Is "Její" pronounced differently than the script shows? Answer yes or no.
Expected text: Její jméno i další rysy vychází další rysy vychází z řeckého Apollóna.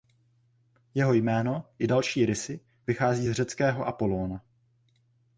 yes